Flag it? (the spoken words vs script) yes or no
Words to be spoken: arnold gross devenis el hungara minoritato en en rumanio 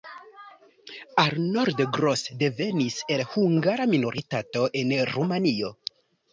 yes